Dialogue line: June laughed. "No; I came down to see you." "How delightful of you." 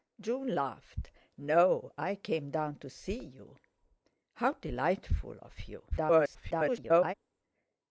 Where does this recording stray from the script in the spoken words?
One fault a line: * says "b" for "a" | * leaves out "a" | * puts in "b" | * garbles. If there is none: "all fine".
* garbles